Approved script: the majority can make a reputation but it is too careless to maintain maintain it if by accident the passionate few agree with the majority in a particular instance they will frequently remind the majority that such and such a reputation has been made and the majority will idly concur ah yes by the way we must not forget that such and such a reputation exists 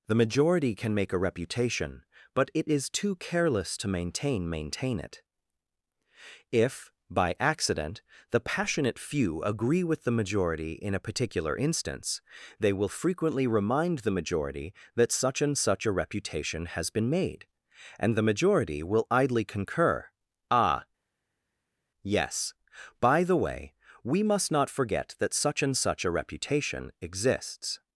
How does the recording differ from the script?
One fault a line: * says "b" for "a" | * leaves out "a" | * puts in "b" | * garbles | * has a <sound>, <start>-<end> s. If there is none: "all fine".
all fine